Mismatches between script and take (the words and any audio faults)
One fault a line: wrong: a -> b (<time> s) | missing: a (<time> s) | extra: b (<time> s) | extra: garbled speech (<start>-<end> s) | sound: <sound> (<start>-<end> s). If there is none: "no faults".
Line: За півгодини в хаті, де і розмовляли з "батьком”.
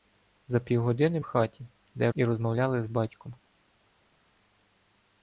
no faults